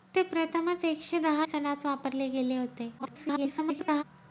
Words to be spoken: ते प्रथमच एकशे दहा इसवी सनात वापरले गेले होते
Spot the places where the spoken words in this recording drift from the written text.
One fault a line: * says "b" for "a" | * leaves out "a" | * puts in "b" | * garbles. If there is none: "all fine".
* leaves out "इसवी"
* garbles